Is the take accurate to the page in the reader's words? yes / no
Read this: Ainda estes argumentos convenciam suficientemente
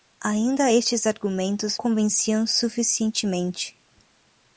yes